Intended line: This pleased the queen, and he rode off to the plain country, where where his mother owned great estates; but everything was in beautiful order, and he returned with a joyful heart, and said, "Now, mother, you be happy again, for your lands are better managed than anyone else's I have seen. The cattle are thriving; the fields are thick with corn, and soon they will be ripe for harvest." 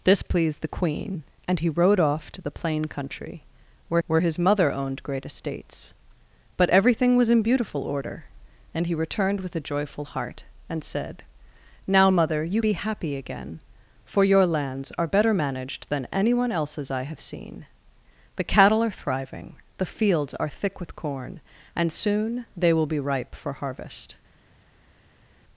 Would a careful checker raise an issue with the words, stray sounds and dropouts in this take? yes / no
no